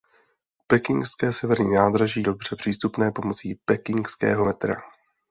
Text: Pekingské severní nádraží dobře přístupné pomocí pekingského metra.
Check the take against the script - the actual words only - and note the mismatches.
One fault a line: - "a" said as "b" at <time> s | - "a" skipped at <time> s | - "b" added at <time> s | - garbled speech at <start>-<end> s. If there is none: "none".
none